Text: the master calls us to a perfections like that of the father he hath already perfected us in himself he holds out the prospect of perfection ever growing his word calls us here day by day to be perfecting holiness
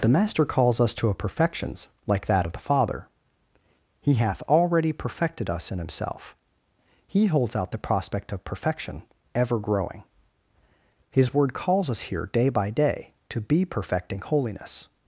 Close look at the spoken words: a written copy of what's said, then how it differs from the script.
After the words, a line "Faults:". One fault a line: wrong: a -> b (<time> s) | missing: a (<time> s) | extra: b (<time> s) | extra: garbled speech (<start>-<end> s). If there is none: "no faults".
the master calls us to a perfections like that of the father he hath already perfected us in himself he holds out the prospect of perfection ever growing his word calls us here day by day to be perfecting holiness
Faults:
no faults